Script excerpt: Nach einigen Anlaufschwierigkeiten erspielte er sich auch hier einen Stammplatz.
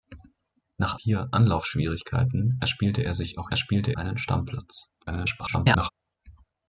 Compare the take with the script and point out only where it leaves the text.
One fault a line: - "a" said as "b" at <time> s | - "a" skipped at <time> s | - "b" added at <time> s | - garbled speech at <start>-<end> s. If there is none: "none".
- "einigen" said as "hier" at 1.0 s
- "hier" said as "erspielte" at 3.5 s
- garbled speech at 5.0-5.9 s